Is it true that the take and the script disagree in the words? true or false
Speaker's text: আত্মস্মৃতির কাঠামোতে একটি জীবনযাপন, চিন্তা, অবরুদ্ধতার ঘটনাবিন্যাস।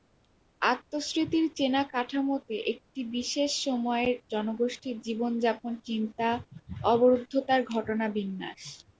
true